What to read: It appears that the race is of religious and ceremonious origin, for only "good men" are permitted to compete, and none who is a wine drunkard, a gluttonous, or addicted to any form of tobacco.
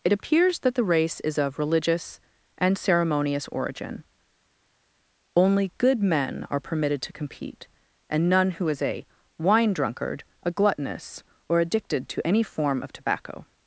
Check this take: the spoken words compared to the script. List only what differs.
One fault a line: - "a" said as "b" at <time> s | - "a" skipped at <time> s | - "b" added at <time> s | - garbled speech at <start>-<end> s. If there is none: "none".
- "for" skipped at 4.0 s